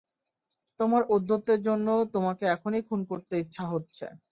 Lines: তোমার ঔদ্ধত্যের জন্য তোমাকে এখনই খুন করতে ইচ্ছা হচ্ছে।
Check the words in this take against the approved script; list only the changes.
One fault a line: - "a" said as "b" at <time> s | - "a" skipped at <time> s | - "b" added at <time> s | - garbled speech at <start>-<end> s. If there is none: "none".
none